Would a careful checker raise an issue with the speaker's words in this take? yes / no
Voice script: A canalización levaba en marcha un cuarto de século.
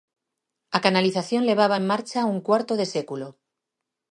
no